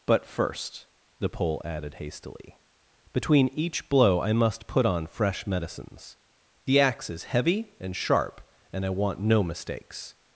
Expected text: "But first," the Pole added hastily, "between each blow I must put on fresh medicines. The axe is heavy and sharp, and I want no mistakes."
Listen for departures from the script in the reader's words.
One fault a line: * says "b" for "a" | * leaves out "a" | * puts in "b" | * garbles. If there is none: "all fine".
all fine